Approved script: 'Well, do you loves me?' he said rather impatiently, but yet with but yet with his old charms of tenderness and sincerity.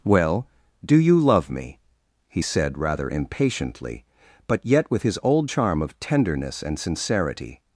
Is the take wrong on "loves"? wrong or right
wrong